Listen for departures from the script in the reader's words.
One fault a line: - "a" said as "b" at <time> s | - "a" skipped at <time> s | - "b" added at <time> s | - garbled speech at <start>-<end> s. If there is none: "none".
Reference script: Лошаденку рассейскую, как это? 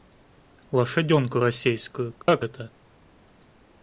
none